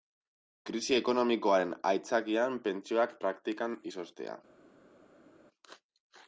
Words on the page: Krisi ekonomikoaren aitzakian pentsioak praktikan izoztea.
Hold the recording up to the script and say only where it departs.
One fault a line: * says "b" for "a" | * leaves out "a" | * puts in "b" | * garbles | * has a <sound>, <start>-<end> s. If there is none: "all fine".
all fine